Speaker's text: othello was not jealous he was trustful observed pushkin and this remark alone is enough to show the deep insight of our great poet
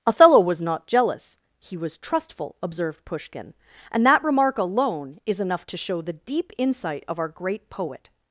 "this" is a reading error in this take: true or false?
true